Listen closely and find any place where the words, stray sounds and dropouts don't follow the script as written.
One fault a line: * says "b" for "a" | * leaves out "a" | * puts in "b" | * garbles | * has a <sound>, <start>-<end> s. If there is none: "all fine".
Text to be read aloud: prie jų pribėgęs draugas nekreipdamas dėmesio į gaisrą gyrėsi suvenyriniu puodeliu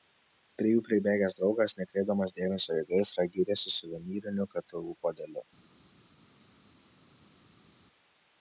* puts in "ktu"